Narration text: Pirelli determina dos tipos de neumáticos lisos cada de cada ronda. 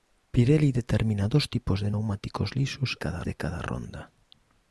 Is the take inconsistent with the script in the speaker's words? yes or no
no